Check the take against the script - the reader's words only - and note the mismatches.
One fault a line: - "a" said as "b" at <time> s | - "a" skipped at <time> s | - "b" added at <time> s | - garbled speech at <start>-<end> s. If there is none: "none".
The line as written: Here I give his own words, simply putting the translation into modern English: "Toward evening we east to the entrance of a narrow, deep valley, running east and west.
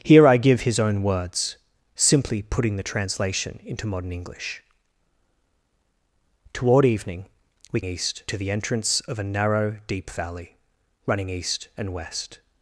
none